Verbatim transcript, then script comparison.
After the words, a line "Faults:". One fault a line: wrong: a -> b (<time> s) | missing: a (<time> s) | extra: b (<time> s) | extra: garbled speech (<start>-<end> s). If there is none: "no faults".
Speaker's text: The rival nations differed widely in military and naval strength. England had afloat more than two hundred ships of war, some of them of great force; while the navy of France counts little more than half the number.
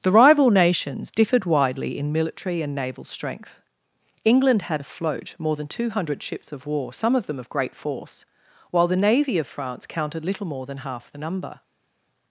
The rival nations differed widely in military and naval strength. England had afloat more than two hundred ships of war, some of them of great force; while the navy of France counted little more than half the number.
Faults:
wrong: counts -> counted (9.9 s)